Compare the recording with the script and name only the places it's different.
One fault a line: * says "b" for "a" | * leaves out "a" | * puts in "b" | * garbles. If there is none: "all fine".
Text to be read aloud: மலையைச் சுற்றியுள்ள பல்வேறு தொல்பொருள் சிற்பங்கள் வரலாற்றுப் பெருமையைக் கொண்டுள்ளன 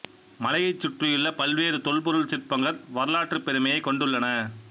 all fine